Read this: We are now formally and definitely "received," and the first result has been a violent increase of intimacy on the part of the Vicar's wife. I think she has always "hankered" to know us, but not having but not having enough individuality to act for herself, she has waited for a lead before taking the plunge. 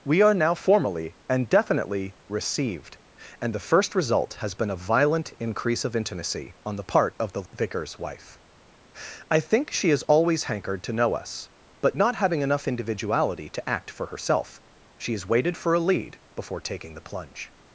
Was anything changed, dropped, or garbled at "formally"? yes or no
no